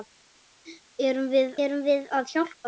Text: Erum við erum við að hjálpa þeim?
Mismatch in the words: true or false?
false